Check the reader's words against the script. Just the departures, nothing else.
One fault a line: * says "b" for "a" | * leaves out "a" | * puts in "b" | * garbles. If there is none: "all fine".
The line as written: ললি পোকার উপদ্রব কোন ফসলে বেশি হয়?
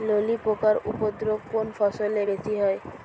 all fine